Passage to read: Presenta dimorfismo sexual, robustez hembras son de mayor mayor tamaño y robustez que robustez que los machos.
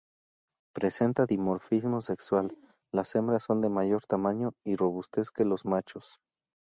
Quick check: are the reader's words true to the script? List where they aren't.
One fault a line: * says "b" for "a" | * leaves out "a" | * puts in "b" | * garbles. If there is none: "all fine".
* says "las" for "robustez"
* leaves out "mayor"
* leaves out "robustez que"